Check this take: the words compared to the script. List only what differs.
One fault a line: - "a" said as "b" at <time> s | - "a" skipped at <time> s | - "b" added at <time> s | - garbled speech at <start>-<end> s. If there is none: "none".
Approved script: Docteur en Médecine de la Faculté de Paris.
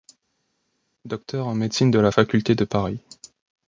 none